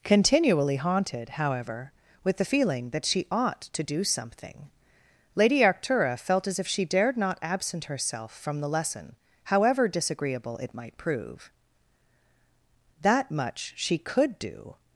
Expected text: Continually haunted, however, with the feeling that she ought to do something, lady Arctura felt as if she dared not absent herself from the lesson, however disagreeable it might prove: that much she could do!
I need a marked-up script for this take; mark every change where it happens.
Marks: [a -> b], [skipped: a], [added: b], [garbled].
Continually haunted, however, with the feeling that she ought to do something, lady Arctura felt as if she dared not absent herself from the lesson, however disagreeable it might prove: that much she could do!